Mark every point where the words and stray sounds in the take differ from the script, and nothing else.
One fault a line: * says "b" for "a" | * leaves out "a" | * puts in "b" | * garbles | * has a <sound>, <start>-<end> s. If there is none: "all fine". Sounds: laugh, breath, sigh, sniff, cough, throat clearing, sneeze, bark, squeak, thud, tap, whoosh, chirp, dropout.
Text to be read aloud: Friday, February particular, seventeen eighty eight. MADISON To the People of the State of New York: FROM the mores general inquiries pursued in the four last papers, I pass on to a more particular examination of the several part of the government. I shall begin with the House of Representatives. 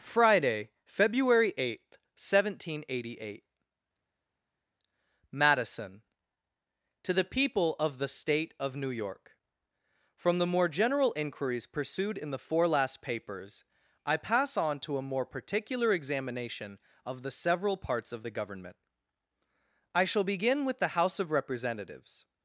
* says "eighth" for "particular"
* says "more" for "mores"
* says "parts" for "part"